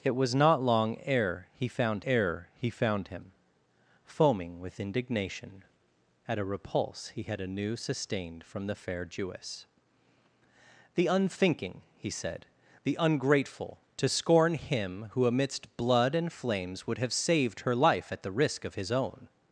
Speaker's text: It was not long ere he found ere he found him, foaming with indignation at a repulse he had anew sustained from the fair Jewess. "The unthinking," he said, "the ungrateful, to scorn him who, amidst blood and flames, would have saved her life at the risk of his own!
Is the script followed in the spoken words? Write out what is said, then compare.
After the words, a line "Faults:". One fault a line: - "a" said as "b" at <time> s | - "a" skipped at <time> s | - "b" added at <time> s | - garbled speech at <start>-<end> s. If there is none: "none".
It was not long ere he found ere he found him, foaming with indignation at a repulse he had anew sustained from the fair Jewess. "The unthinking," he said, "the ungrateful, to scorn him who, amidst blood and flames, would have saved her life at the risk of his own!
Faults:
none